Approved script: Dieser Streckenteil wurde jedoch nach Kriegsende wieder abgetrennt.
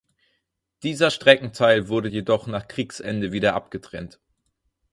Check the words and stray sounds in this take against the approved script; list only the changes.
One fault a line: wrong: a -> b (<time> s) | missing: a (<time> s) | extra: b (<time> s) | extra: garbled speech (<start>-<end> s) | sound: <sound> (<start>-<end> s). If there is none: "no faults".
no faults